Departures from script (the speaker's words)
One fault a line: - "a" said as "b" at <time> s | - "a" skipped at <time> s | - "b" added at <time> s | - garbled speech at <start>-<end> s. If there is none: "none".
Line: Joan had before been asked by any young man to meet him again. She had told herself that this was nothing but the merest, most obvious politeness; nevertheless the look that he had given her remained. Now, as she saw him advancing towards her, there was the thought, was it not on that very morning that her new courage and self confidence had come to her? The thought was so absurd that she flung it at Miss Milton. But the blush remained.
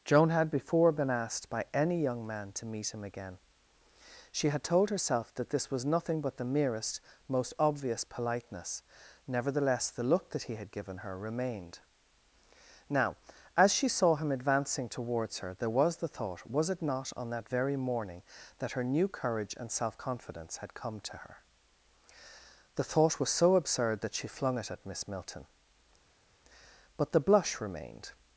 none